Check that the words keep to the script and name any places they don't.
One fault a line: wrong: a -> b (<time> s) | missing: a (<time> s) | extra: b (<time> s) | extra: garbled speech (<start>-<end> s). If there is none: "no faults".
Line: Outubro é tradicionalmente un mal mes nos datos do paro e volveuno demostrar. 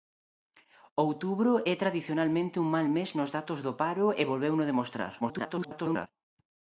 extra: garbled speech (5.2-6.1 s)